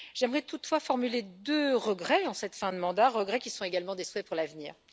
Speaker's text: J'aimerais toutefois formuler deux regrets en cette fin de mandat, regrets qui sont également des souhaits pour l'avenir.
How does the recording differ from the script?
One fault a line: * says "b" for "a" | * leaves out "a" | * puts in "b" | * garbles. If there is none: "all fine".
all fine